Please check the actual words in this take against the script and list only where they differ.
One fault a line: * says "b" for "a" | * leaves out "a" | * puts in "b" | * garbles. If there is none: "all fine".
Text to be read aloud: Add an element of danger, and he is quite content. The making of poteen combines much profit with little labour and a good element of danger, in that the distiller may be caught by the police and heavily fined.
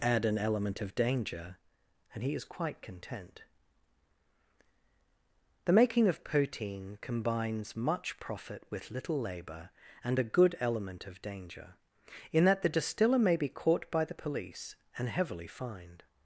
all fine